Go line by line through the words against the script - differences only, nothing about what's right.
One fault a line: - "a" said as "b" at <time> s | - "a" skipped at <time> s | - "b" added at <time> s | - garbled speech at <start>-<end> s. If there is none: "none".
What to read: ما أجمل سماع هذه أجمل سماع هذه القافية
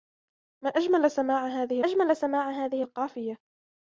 none